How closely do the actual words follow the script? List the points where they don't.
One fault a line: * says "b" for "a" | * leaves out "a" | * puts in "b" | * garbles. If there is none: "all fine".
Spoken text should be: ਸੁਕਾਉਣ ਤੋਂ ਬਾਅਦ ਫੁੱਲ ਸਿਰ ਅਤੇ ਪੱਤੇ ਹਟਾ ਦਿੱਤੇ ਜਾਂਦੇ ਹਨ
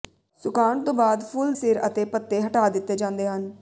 all fine